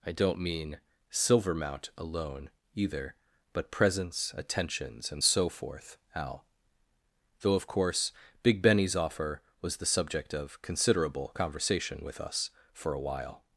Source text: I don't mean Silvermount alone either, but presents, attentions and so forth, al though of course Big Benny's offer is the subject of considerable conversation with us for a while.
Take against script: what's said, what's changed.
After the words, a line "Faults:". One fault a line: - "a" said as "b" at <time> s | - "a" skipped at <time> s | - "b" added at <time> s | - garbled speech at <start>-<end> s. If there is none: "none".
I don't mean Silvermount alone either, but presents, attentions and so forth, al though of course Big Benny's offer was the subject of considerable conversation with us for a while.
Faults:
- "is" said as "was" at 9.6 s